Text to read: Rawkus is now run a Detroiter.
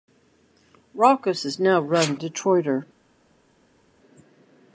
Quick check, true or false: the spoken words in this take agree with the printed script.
true